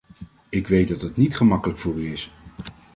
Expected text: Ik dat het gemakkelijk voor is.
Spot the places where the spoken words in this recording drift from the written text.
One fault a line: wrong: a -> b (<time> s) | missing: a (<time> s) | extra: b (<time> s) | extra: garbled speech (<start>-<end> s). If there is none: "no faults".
extra: weet (0.7 s)
extra: niet (1.2 s)
extra: u (1.9 s)